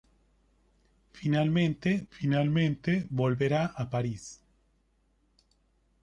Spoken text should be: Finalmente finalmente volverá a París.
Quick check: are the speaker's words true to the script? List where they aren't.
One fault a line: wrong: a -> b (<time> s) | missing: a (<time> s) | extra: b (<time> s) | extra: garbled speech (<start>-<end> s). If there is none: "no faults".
no faults